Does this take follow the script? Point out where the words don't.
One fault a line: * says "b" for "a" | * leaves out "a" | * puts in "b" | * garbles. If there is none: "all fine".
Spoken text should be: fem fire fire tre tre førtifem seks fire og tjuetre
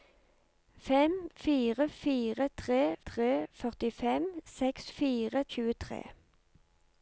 all fine